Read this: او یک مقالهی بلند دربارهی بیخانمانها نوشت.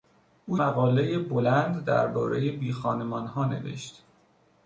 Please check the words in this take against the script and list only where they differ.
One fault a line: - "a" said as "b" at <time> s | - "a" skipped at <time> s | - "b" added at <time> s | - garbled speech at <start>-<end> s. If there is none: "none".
- "یک" skipped at 0.6 s